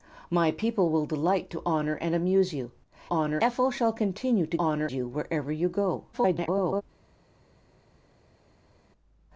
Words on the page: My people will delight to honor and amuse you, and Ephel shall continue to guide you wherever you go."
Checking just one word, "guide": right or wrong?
wrong